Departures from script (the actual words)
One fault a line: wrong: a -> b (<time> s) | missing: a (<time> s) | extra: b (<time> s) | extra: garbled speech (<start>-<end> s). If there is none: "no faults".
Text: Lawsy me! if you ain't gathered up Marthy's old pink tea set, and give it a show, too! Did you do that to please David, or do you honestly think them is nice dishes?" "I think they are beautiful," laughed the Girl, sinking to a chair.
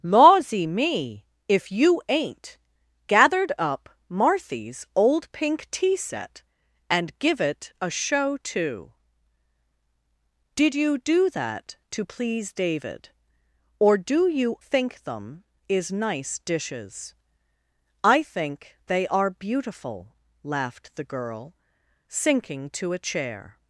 missing: honestly (14.6 s)